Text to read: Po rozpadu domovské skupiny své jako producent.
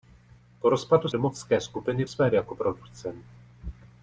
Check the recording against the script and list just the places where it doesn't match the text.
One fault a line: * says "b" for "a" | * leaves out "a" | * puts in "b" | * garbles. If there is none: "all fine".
all fine